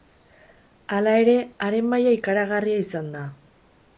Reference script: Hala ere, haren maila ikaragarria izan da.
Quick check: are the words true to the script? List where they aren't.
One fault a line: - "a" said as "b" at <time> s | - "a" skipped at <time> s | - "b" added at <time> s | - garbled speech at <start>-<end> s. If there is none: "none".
none